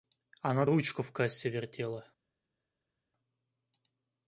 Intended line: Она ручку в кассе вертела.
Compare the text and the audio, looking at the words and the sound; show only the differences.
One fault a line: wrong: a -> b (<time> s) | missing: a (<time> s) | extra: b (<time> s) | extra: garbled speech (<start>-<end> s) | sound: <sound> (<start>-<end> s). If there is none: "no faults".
no faults